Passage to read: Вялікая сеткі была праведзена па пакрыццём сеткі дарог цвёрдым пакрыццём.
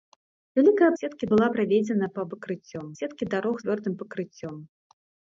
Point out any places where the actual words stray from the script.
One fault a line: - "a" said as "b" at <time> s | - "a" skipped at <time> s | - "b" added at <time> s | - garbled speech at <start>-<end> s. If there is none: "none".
none